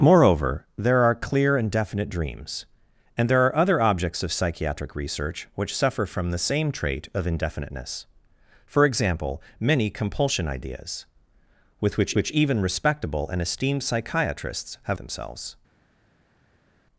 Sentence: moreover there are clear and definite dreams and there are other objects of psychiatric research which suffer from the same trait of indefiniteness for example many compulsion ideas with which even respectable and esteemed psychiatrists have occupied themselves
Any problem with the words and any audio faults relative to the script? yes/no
yes